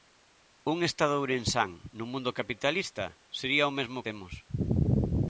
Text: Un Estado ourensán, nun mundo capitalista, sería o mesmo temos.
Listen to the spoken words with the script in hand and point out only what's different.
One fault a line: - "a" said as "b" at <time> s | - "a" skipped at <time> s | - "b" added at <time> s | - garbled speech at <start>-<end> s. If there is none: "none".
none